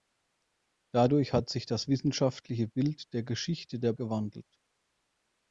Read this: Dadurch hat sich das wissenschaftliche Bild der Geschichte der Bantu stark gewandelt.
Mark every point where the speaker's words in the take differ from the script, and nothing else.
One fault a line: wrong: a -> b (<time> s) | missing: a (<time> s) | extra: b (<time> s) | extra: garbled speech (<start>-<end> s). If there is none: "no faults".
missing: Bantu stark (3.9 s)